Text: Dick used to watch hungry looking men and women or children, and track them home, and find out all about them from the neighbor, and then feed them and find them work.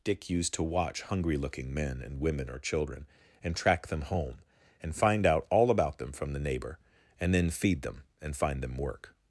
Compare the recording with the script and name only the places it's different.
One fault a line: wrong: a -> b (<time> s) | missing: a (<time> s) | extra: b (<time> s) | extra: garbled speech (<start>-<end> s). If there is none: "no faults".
no faults